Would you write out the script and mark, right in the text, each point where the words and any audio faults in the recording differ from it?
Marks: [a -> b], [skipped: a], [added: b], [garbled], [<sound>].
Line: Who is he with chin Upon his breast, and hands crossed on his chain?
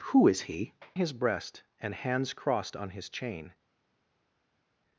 Who is he [skipped: with chin Upon] his breast, and hands crossed on his chain?